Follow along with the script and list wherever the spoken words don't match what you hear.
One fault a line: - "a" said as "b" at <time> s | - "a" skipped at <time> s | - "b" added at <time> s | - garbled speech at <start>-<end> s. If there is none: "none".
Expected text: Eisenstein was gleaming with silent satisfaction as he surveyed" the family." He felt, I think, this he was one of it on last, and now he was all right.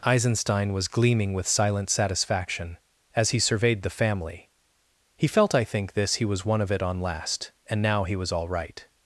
none